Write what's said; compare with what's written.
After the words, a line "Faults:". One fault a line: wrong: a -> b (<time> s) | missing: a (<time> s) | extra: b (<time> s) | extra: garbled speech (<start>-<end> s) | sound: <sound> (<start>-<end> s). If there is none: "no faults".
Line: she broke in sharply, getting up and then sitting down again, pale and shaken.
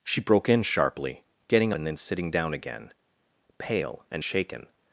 she broke in sharply, getting and then sitting down again, pale and shaken.
Faults:
missing: up (1.7 s)